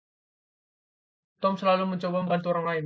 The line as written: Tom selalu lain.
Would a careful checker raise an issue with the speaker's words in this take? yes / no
yes